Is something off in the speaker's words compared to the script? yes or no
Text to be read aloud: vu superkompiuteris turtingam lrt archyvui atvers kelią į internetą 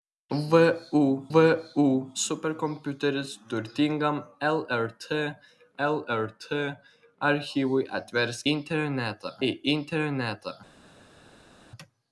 yes